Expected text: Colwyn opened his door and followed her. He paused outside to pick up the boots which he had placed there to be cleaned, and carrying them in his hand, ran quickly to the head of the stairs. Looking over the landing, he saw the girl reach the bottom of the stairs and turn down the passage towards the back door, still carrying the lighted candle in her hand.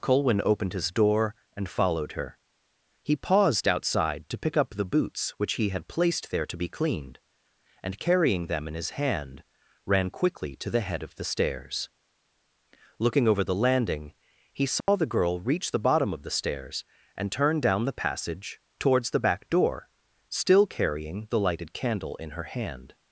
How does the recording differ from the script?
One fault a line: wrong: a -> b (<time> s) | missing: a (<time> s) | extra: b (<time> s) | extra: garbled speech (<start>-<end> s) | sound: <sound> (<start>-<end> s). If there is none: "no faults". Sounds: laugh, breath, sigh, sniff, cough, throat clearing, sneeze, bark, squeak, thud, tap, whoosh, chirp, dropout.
sound: dropout (14.8-14.9 s)